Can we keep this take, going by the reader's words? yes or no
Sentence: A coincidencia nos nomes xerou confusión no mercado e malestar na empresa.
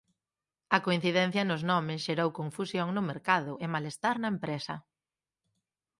yes